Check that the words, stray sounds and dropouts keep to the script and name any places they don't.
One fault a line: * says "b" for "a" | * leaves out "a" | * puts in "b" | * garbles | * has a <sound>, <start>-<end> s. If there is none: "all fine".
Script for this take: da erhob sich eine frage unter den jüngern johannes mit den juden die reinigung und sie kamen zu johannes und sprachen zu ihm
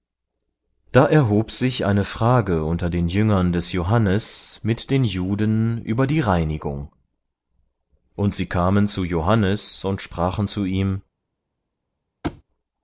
* puts in "des"
* puts in "über"
* has a thud, 12.2-12.4 s